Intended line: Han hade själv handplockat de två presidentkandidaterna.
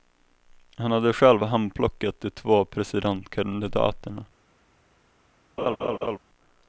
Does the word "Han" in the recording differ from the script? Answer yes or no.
no